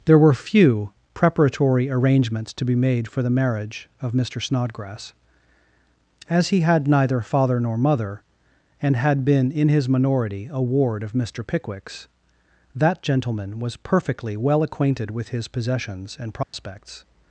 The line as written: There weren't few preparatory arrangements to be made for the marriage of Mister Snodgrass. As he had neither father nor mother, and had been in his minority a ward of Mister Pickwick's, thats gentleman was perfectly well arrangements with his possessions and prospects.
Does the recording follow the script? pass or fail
fail